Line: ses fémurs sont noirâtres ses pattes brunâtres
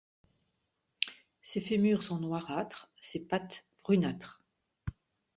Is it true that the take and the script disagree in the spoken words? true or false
false